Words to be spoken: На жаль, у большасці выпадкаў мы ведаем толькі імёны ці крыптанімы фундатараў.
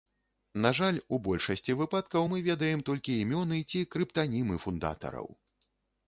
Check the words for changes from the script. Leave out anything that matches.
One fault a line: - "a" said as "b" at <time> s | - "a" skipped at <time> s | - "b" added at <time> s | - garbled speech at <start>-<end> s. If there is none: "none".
none